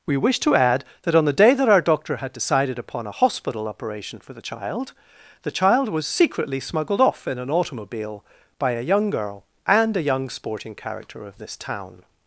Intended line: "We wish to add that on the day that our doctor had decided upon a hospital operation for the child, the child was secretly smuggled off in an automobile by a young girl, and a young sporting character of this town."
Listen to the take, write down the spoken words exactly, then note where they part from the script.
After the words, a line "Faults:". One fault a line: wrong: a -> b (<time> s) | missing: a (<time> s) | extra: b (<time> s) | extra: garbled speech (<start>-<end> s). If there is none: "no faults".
"We wish to add that on the day that our doctor had decided upon a hospital operation for the child, the child was secretly smuggled off in an automobile by a young girl, and a young sporting character of this town."
Faults:
no faults